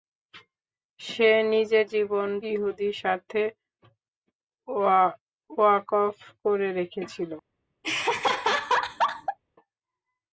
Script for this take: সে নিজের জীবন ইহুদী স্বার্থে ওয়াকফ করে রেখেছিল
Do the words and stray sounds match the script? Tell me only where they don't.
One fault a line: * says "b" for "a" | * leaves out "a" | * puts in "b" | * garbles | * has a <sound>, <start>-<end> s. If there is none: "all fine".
* has a laugh, 7.8-9.4 s